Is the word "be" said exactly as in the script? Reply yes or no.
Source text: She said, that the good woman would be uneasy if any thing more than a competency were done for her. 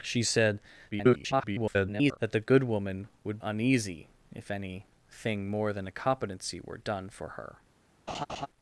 no